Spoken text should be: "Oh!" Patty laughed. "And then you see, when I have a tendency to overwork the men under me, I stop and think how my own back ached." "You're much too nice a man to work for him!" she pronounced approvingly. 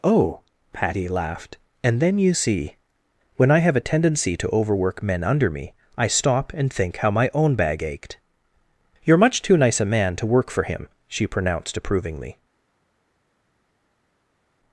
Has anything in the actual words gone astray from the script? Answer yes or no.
yes